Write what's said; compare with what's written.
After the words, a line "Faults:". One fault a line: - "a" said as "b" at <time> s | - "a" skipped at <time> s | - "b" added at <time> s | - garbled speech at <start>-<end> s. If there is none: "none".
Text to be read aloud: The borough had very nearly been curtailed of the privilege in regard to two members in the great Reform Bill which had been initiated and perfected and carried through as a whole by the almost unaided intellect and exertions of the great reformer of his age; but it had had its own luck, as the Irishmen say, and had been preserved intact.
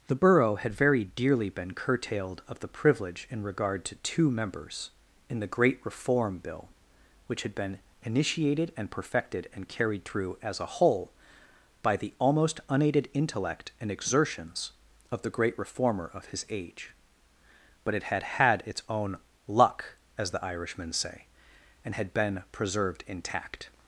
The borough had very dearly been curtailed of the privilege in regard to two members in the great Reform Bill which had been initiated and perfected and carried through as a whole by the almost unaided intellect and exertions of the great reformer of his age; but it had had its own luck, as the Irishmen say, and had been preserved intact.
Faults:
- "nearly" said as "dearly" at 1.1 s